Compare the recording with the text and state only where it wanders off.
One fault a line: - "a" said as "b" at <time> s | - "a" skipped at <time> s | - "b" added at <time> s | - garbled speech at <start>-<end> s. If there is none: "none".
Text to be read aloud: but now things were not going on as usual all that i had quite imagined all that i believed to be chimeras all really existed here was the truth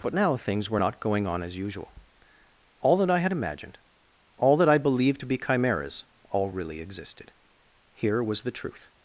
- "quite" skipped at 3.3 s